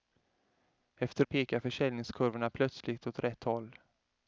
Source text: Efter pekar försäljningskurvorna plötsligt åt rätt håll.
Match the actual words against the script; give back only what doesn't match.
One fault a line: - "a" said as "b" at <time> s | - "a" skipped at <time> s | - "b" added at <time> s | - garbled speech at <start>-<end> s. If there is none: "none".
none